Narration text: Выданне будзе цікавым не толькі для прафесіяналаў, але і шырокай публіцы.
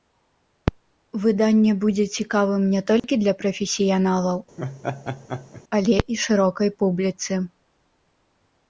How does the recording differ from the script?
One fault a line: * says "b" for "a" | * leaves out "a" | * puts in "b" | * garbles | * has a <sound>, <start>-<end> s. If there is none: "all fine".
* has a dropout, 3.0-3.0 s
* has a laugh, 4.6-5.6 s